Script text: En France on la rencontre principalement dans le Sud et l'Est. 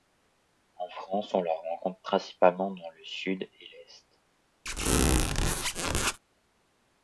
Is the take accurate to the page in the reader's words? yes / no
yes